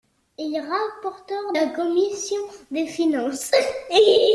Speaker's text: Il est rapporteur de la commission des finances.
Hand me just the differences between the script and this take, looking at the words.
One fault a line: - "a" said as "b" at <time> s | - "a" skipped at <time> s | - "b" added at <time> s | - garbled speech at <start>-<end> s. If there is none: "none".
- "de" skipped at 1.5 s